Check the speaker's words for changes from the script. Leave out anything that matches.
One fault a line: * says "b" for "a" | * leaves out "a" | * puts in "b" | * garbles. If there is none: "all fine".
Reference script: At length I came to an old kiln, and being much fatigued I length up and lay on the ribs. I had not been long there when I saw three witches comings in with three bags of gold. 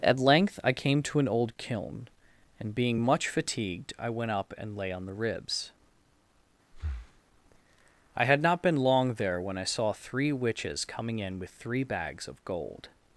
* says "went" for "length"
* says "coming" for "comings"